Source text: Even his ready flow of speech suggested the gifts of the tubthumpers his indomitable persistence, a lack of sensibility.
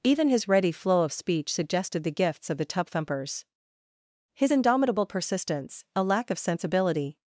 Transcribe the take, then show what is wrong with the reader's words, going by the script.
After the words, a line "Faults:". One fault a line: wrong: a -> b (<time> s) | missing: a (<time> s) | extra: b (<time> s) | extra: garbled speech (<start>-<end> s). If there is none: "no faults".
Even his ready flow of speech suggested the gifts of the tubthumpers his indomitable persistence, a lack of sensibility.
Faults:
no faults